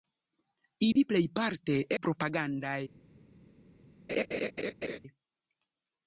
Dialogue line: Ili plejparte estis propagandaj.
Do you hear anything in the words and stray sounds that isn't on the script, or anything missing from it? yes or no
yes